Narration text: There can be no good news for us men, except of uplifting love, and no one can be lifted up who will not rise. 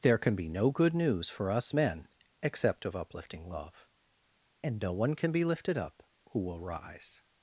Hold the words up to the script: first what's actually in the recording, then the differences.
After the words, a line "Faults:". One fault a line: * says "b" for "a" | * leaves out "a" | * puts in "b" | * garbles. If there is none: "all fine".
There can be no good news for us men, except of uplifting love, and no one can be lifted up who will rise.
Faults:
* leaves out "not"